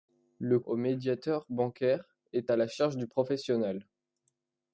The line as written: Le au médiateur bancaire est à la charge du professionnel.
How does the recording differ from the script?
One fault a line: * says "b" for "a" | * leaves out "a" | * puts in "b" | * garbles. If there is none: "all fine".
all fine